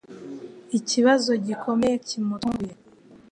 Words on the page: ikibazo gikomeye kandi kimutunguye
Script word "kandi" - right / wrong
wrong